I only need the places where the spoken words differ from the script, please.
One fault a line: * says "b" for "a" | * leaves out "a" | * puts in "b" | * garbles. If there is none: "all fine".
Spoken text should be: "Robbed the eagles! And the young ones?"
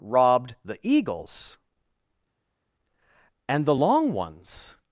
* says "long" for "young"